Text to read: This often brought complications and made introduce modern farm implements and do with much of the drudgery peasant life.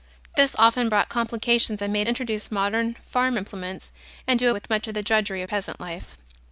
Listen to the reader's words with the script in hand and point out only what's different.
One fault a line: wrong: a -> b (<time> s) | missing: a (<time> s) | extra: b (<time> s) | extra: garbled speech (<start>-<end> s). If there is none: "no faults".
no faults